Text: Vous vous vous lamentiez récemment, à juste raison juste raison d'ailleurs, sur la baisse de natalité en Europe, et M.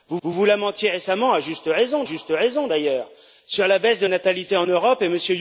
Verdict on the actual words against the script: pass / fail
pass